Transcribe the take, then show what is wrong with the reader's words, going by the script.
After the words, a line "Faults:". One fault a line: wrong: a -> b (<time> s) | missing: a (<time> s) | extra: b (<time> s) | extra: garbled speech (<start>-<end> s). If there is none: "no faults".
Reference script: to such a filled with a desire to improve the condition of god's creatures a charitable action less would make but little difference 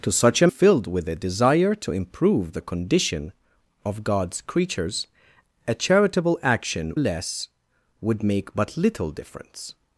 to such a filled with a desire to improve the condition of god's creatures a charitable action less would make but little difference
Faults:
no faults